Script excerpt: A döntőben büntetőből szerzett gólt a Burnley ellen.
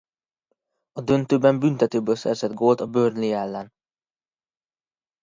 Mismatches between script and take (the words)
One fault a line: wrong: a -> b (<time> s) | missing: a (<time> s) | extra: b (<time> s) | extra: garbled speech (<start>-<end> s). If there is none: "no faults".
no faults